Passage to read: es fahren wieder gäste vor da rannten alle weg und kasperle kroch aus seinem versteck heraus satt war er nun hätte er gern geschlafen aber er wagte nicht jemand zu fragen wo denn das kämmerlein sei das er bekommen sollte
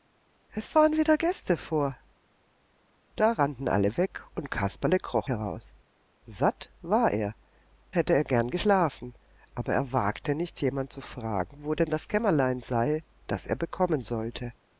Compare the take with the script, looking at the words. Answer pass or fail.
fail